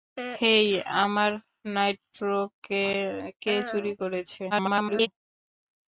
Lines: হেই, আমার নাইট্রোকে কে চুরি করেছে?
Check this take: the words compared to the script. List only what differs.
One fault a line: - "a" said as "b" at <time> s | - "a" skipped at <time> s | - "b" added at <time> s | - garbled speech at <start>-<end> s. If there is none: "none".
- garbled speech at 4.5-5.1 s